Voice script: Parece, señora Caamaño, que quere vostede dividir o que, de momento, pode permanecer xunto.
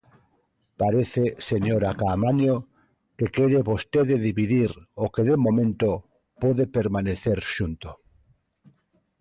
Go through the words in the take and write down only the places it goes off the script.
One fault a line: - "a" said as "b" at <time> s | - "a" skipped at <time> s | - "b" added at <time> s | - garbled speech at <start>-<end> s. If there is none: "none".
none